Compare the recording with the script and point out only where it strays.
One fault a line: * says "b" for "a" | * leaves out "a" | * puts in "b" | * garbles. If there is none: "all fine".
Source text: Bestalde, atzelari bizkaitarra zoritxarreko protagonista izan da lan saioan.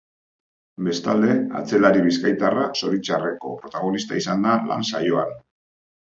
all fine